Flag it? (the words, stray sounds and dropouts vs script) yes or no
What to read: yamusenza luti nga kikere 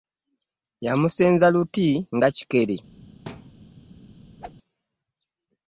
yes